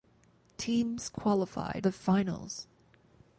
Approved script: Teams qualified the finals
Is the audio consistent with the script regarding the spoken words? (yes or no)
yes